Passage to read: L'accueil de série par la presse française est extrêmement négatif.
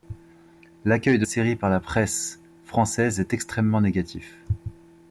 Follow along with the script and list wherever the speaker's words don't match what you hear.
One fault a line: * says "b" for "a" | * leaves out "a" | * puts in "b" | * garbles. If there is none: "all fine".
all fine